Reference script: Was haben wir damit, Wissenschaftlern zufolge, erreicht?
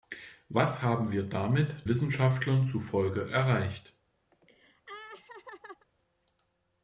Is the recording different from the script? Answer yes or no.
no